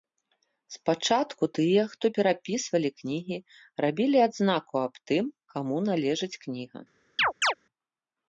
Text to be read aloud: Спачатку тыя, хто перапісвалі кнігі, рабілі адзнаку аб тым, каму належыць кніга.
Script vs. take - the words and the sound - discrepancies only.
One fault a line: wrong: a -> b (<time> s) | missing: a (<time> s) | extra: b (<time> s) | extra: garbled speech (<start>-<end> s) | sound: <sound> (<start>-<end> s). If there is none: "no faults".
sound: chirp (7.2-7.5 s)